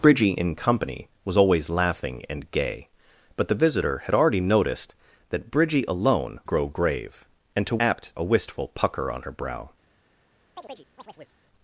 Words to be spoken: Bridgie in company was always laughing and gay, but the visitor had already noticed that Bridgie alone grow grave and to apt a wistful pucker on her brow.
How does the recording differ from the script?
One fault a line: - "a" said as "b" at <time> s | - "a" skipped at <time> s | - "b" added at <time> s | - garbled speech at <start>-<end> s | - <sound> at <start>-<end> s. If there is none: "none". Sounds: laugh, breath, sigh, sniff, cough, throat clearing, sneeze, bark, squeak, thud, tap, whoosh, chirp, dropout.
- chirp at 10.6-11.4 s